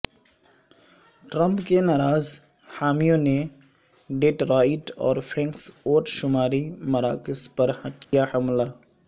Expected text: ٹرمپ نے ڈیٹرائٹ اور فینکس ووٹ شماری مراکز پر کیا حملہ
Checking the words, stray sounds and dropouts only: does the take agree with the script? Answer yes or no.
no